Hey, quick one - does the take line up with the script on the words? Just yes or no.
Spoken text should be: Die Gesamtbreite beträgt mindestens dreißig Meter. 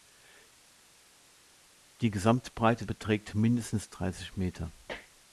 yes